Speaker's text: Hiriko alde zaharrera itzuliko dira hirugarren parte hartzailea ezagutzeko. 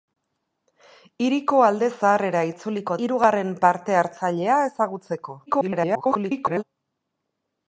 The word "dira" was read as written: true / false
false